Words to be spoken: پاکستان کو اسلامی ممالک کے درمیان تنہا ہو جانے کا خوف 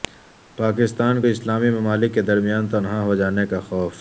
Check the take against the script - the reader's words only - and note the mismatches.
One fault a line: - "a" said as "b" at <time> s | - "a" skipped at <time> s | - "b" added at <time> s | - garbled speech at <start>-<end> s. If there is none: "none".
none